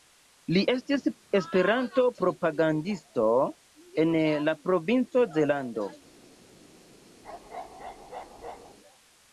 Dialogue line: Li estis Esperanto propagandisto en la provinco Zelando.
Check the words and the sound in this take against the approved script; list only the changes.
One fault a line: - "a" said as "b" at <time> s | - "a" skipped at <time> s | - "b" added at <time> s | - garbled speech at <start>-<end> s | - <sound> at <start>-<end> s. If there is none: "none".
- bark at 7.2-8.8 s